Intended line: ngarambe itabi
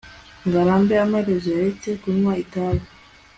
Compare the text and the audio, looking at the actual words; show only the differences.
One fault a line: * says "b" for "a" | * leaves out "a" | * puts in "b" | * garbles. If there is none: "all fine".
* puts in "amaherezo yaretse kunywa"